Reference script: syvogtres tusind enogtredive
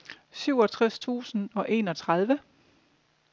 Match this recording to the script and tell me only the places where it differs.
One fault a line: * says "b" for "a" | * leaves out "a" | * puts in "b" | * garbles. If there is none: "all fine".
* puts in "og"